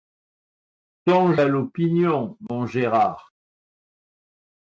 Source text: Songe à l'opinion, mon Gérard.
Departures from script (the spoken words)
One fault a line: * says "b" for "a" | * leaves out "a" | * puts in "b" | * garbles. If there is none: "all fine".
all fine